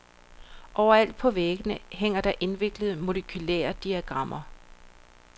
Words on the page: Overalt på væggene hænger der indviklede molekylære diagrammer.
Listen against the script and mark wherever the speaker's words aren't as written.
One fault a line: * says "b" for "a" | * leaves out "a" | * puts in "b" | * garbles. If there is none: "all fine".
all fine